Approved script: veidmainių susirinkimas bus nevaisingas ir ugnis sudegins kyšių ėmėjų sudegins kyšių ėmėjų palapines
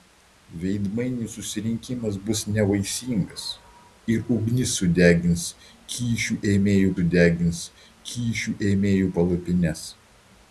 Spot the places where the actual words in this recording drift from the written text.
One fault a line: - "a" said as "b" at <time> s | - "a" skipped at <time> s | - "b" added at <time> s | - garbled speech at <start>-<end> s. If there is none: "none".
none